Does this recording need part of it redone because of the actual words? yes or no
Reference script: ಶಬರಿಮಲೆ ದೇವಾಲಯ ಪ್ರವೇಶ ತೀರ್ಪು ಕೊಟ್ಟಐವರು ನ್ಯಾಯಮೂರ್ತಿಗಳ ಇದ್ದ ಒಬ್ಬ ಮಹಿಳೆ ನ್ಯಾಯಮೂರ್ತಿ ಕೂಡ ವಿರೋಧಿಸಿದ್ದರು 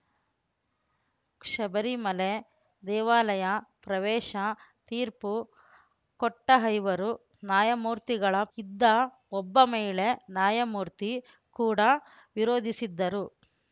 no